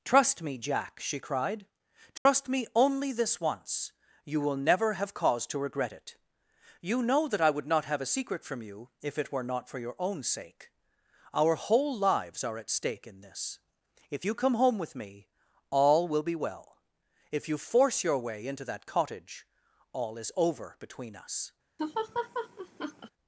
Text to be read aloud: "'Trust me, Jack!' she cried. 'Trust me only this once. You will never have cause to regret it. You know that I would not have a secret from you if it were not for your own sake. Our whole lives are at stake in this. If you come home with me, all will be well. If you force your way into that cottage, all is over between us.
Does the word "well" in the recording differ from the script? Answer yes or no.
no